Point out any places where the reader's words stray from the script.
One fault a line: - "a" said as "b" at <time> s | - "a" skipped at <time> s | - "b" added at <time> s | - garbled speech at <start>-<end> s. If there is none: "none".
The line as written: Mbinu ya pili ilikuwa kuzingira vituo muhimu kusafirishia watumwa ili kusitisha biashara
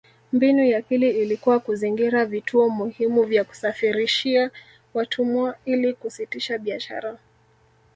- "vya" added at 3.2 s